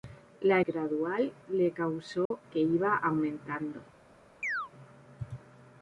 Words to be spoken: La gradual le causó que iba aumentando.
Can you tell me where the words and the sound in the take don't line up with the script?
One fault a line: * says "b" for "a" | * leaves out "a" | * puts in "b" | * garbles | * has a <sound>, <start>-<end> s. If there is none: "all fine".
* has a dropout, 2.3-2.3 s
* has a chirp, 4.4-4.7 s